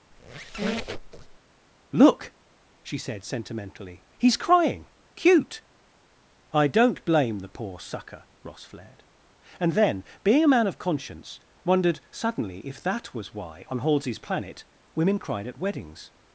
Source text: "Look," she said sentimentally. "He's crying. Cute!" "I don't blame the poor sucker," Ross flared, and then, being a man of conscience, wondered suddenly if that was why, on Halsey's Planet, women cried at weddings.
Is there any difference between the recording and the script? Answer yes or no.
no